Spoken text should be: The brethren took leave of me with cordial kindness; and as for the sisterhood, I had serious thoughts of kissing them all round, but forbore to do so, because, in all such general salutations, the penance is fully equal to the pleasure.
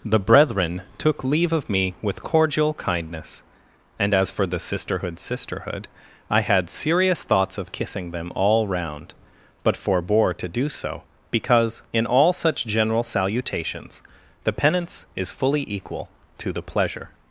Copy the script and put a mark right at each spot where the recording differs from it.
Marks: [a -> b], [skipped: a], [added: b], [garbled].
The brethren took leave of me with cordial kindness; and as for the sisterhood, [added: sisterhood] I had serious thoughts of kissing them all round, but forbore to do so, because, in all such general salutations, the penance is fully equal to the pleasure.